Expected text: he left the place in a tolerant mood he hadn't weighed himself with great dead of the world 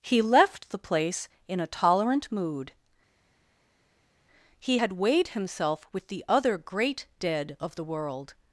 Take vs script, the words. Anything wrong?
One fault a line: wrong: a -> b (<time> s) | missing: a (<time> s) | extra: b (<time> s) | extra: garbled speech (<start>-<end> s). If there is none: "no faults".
wrong: hadn't -> had (4.7 s)
extra: the other (6.1 s)